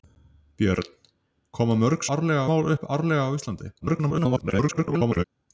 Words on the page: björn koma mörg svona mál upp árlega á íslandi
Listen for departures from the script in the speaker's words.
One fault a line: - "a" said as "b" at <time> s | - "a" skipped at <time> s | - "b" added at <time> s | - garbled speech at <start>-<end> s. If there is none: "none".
- "svona" said as "árlega" at 2.2 s
- garbled speech at 3.8-5.2 s